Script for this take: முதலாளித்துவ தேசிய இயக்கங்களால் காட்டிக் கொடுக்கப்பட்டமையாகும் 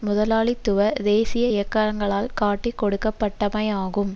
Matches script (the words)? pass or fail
pass